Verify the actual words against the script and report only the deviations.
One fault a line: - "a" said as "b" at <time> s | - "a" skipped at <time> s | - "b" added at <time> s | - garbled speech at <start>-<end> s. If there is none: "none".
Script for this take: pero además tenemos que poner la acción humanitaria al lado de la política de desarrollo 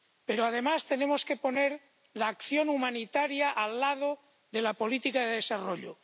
none